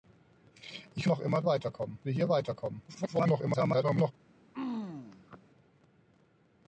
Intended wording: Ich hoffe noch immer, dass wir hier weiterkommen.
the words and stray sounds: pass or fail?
fail